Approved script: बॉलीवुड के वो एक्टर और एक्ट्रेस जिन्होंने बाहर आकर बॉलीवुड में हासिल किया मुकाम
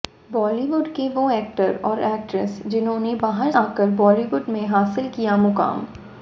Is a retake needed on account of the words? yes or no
no